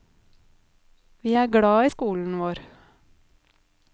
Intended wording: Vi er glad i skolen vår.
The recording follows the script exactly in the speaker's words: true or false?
true